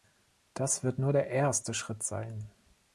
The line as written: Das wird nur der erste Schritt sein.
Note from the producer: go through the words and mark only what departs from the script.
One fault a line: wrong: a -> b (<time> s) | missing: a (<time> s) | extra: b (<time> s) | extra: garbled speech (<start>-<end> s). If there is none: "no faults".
no faults